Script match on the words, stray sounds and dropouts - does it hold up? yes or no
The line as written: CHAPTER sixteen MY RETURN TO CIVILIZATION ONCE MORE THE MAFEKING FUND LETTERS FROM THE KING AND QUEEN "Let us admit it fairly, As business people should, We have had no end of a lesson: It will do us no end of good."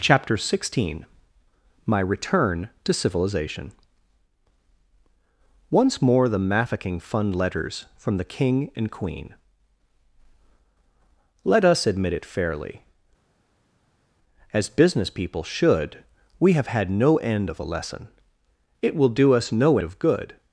no